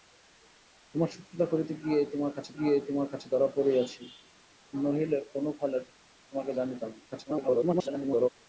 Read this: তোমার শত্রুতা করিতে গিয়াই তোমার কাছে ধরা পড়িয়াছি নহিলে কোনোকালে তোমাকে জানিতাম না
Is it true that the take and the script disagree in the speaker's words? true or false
true